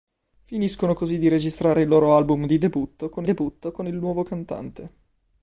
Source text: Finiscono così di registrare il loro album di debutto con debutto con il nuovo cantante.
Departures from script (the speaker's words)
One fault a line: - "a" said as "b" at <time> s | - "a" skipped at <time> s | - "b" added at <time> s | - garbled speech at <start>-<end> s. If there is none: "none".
none